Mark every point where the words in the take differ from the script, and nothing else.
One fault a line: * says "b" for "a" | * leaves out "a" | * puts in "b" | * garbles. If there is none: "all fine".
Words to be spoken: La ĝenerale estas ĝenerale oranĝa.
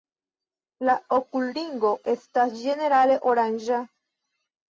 * says "okulringo" for "ĝenerale"